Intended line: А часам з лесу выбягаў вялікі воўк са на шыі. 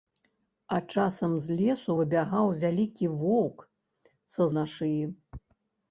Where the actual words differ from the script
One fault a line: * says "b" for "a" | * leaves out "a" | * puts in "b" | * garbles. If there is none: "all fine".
all fine